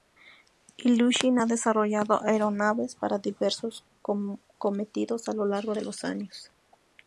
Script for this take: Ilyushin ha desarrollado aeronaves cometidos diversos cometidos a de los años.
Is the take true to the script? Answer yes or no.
no